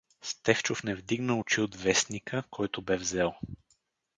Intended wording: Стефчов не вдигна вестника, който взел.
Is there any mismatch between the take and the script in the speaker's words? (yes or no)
yes